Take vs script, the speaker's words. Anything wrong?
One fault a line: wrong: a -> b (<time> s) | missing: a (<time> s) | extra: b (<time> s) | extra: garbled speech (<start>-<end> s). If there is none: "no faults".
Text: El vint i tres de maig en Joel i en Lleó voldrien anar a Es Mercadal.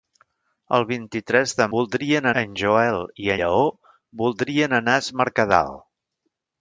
wrong: maig -> voldrien (1.8 s)
missing: en (3.3 s)